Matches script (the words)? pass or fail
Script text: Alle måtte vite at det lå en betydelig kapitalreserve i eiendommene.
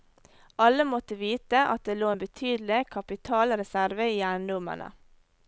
pass